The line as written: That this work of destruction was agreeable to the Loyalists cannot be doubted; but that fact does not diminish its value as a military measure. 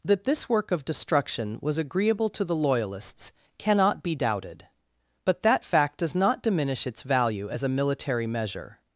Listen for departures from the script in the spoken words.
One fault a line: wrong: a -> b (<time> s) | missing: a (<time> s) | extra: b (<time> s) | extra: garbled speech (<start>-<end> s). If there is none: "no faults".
no faults